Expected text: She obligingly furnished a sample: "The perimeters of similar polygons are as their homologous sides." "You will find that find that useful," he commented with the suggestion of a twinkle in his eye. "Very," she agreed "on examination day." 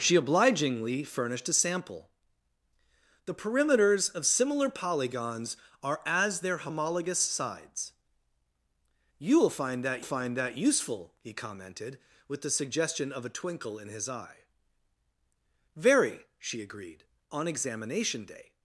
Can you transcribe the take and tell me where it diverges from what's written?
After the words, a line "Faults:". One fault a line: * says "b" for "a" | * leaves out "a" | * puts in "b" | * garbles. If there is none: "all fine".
She obligingly furnished a sample: "The perimeters of similar polygons are as their homologous sides." "You will find that find that useful," he commented with the suggestion of a twinkle in his eye. "Very," she agreed "on examination day."
Faults:
all fine